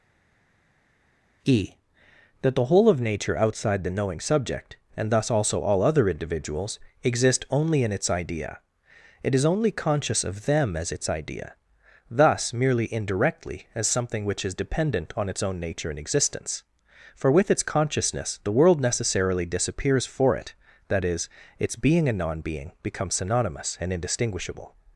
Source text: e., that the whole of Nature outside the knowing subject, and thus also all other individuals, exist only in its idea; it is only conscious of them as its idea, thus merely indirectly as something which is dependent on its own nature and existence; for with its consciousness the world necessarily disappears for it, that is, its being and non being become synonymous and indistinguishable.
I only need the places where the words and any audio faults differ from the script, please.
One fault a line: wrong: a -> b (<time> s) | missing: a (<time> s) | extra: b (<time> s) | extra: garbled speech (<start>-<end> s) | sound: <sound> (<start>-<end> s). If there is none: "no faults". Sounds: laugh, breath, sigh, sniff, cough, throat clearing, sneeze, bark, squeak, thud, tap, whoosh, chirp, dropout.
no faults